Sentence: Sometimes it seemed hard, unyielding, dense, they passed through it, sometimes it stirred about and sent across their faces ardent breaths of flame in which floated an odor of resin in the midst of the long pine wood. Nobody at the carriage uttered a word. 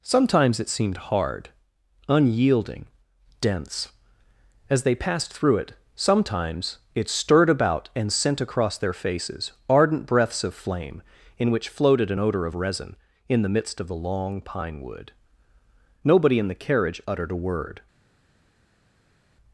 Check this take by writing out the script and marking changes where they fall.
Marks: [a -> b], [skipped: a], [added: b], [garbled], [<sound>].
Sometimes it seemed hard, unyielding, dense, [added: as] they passed through it, sometimes it stirred about and sent across their faces ardent breaths of flame in which floated an odor of resin in the midst of the long pine wood. Nobody [at -> in] the carriage uttered a word.